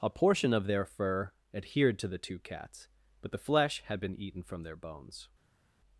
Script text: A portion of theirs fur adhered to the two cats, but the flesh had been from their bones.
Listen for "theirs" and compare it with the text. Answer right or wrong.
wrong